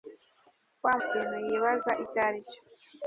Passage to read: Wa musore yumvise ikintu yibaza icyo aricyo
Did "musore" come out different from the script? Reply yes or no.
yes